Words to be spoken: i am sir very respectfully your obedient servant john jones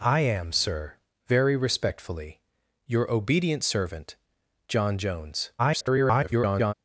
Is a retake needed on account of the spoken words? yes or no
yes